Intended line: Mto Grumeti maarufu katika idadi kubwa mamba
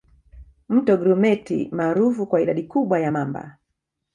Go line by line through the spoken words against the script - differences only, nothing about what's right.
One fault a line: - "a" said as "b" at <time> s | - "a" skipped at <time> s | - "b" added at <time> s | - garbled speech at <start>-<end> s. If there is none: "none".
- "katika" said as "kwa" at 2.3 s
- "ya" added at 3.0 s